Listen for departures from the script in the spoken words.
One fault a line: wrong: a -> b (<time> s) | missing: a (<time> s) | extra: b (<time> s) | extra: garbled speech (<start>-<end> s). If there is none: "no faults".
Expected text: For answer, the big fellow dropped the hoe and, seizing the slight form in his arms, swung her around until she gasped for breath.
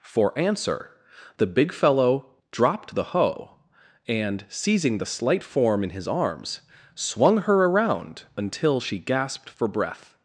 no faults